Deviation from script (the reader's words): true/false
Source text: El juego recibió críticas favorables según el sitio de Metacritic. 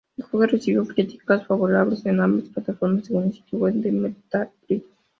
true